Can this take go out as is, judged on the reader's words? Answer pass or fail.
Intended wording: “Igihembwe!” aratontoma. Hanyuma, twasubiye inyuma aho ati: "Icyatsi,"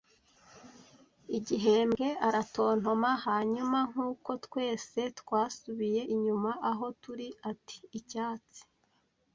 fail